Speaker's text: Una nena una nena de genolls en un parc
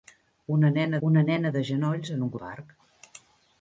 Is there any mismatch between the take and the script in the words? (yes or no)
no